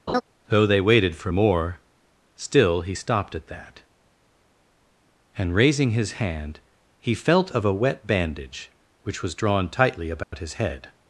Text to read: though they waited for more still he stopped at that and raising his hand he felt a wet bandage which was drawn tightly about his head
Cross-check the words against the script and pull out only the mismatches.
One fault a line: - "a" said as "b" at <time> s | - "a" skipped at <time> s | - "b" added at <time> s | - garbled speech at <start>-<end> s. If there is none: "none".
- "of" added at 7.5 s